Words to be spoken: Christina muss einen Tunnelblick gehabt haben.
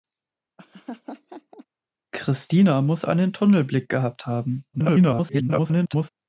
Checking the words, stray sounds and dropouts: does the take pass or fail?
fail